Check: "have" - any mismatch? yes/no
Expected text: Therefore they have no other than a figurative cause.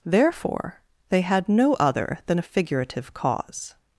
yes